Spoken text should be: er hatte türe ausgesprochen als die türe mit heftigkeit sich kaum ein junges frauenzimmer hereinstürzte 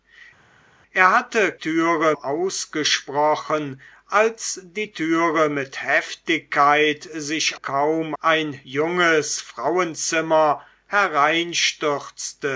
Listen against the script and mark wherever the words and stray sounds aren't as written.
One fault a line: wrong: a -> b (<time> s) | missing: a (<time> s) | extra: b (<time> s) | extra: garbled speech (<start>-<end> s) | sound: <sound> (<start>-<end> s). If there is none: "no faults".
no faults